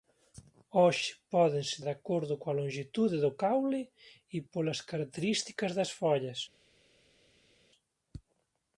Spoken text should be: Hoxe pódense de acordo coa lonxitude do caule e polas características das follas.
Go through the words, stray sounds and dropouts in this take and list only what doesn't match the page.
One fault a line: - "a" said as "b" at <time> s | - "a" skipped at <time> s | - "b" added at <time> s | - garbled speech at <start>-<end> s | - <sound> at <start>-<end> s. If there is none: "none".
none